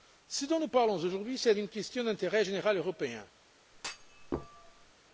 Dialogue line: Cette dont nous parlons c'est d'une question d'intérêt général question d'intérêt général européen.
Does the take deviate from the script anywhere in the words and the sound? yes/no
yes